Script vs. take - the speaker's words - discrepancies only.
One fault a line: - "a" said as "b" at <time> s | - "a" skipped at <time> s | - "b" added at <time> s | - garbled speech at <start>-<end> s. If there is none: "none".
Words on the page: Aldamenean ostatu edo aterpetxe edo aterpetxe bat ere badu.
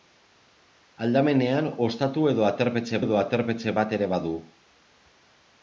none